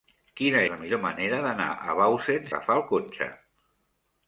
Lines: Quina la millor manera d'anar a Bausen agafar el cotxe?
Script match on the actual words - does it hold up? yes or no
yes